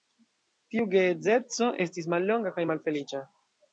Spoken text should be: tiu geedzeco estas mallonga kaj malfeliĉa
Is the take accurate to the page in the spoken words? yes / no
no